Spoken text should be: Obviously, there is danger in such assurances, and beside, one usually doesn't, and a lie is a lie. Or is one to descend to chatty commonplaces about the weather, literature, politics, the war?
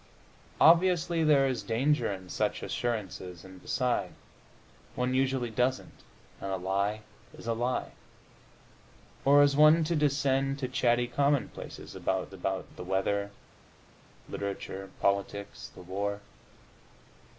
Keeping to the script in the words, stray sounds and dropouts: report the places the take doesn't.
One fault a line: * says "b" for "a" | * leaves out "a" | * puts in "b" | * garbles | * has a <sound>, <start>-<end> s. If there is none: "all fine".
* puts in "about"